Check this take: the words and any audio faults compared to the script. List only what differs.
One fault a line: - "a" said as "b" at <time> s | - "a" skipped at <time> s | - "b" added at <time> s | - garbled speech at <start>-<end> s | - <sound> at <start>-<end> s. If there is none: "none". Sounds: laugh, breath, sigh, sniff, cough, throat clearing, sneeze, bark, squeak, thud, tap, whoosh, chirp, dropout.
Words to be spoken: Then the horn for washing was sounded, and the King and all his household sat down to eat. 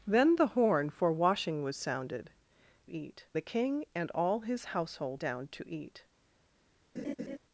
- "and" said as "eat" at 2.9 s
- "sat" skipped at 5.2 s
- laugh at 7.0-7.4 s